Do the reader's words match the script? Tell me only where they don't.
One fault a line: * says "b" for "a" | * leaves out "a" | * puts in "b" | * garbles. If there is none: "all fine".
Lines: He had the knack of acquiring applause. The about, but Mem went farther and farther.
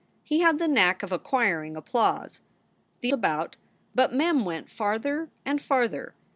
all fine